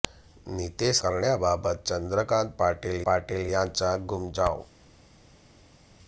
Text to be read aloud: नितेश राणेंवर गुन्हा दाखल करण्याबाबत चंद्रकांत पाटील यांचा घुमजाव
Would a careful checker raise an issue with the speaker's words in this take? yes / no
yes